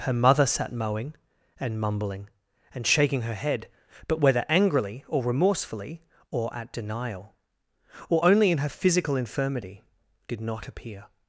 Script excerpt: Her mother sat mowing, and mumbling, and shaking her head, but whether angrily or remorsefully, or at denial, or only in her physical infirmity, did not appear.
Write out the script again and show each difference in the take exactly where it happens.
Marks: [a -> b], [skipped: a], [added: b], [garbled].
Her mother sat mowing, and mumbling, and shaking her head, but whether angrily or remorsefully, or at denial, or only in her physical infirmity, did not appear.